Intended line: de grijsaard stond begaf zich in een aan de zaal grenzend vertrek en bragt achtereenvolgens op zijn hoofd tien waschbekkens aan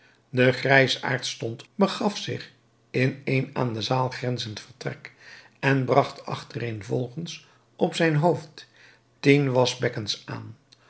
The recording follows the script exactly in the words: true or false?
true